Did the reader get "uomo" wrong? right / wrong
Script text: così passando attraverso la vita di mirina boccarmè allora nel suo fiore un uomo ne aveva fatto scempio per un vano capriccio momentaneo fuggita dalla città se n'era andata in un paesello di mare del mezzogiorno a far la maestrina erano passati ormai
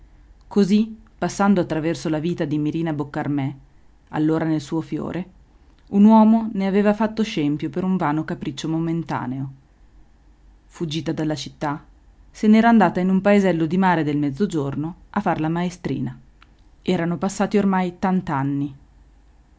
right